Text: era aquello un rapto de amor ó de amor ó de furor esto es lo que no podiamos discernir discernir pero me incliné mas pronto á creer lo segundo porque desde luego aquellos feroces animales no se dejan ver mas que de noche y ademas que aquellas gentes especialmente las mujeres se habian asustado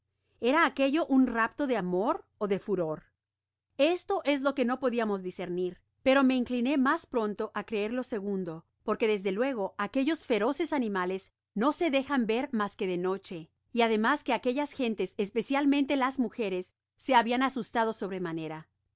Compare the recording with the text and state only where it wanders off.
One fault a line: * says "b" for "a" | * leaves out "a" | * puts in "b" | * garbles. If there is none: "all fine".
* leaves out "amor ó de"
* leaves out "discernir"